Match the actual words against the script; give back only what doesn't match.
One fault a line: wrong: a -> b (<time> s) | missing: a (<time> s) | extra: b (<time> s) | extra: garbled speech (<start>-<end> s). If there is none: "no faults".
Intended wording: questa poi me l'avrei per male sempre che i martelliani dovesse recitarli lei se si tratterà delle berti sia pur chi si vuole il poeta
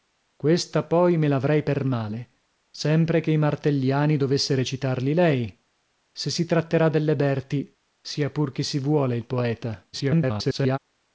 extra: garbled speech (9.9-10.8 s)